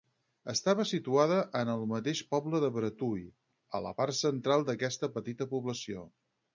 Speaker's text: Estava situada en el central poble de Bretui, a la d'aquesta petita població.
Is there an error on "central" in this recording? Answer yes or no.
yes